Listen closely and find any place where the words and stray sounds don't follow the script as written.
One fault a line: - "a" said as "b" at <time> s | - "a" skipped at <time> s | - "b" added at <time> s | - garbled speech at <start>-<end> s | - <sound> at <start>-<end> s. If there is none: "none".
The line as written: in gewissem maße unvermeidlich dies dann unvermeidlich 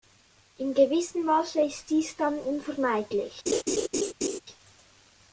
- "unvermeidlich" said as "ist" at 1.6 s
- laugh at 3.5-4.4 s